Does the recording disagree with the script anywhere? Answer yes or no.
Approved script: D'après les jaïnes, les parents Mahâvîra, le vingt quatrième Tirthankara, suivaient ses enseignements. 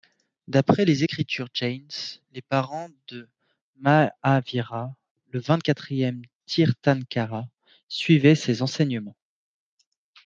yes